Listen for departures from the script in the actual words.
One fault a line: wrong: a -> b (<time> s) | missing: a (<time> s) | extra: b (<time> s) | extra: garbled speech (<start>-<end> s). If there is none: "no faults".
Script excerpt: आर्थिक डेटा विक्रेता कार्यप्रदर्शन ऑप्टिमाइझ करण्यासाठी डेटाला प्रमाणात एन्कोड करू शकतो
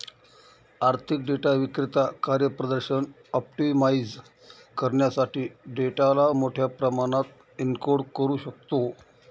extra: मोठ्या (6.3 s)